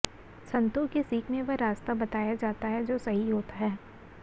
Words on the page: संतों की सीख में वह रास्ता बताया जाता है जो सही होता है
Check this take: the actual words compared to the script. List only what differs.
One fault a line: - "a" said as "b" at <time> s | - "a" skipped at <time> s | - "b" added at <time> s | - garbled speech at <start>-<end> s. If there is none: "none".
none